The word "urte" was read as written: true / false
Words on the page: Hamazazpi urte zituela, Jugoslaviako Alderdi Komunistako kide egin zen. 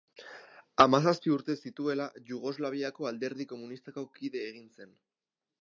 true